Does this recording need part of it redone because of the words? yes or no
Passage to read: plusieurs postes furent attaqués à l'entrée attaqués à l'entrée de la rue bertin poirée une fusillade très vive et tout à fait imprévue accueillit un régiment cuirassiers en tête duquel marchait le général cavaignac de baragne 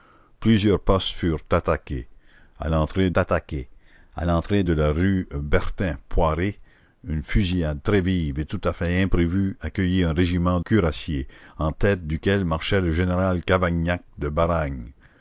no